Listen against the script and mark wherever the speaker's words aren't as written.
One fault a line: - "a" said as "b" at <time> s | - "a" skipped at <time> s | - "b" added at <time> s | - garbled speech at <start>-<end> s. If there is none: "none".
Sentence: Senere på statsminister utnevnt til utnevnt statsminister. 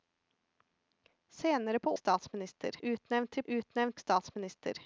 none